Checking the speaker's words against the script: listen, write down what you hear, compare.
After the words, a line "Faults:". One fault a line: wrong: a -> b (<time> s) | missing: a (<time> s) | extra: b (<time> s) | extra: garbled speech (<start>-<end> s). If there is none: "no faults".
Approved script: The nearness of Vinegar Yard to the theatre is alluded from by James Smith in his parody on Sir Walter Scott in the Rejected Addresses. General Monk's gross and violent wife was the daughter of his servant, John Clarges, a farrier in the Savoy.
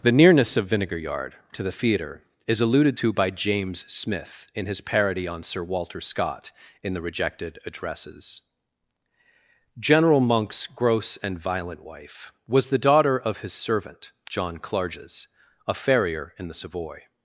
The nearness of Vinegar Yard to the theatre is alluded to by James Smith in his parody on Sir Walter Scott in the Rejected Addresses. General Monk's gross and violent wife was the daughter of his servant, John Clarges, a farrier in the Savoy.
Faults:
wrong: from -> to (3.0 s)